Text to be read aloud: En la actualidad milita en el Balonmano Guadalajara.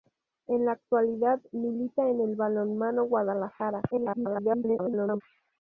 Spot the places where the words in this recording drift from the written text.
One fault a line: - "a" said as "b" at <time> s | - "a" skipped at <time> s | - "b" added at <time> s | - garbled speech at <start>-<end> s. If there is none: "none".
- garbled speech at 3.9-5.2 s